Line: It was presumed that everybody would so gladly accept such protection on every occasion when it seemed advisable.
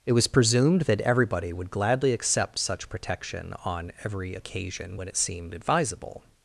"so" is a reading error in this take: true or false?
true